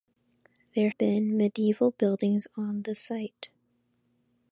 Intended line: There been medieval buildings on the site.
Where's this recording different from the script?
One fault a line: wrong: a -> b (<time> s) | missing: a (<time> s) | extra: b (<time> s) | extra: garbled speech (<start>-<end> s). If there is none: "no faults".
no faults